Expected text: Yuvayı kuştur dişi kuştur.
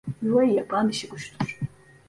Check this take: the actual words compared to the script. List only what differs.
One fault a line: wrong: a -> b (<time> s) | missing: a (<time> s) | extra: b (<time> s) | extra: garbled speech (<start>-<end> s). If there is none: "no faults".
wrong: kuştur -> yapan (0.5 s)